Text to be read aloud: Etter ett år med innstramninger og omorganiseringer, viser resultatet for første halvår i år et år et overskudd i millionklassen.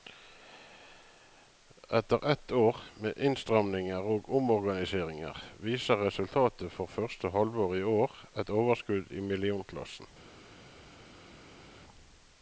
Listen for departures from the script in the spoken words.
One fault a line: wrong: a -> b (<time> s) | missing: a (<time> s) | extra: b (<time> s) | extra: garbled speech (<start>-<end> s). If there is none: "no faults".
missing: år et (8.6 s)